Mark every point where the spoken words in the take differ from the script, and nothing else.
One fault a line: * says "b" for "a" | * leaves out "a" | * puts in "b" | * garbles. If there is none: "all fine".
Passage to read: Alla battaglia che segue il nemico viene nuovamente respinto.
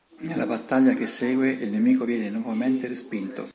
* says "Nella" for "Alla"